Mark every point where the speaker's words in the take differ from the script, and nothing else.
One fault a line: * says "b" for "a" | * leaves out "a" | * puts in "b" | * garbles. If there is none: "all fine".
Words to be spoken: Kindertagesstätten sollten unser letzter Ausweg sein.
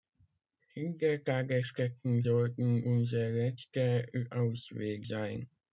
all fine